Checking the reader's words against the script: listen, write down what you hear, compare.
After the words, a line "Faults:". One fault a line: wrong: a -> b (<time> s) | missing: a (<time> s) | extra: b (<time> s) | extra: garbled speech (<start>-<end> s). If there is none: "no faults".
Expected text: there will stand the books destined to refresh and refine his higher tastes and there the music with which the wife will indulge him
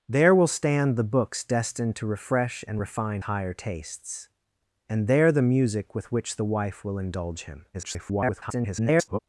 there will stand the books destined to refresh and refine higher tastes and there the music with which the wife will indulge him [garbled]
Faults:
missing: his (3.2 s)
extra: garbled speech (7.7-9.2 s)